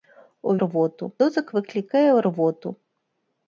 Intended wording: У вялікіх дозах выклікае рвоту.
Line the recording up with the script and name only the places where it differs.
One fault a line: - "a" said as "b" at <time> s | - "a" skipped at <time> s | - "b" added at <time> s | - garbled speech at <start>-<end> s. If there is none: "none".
- "вялікіх" said as "рвоту" at 0.7 s